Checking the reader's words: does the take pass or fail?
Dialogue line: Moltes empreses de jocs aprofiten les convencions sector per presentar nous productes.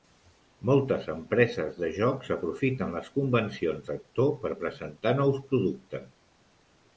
pass